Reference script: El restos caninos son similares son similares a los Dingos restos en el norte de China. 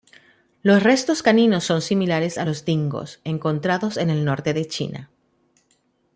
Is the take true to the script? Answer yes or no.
no